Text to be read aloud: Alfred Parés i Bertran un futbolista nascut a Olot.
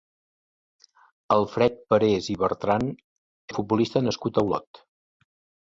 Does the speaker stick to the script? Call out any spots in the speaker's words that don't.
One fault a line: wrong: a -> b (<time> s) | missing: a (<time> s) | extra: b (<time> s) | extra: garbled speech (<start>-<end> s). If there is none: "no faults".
no faults